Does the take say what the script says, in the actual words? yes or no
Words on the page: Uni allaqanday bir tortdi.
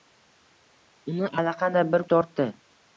yes